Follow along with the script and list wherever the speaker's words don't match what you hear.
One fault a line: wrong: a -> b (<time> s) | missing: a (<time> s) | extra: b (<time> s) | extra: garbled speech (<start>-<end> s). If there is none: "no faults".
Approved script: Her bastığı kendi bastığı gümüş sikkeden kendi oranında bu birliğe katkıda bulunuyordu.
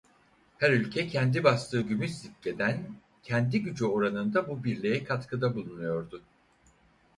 wrong: bastığı -> ülke (0.7 s)
extra: gücü (3.6 s)